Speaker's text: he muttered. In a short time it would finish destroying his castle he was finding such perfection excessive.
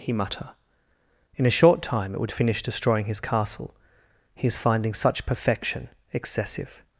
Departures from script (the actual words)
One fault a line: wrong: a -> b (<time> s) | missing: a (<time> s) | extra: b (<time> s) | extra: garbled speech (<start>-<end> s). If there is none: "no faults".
wrong: muttered -> mutter (0.1 s)
wrong: was -> is (4.5 s)